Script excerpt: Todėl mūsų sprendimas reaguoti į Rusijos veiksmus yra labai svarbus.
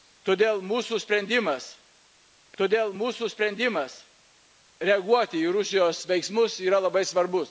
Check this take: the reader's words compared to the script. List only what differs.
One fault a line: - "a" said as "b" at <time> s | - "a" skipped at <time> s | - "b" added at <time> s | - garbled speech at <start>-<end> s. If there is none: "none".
- "todėl mūsų sprendimas" added at 2.6 s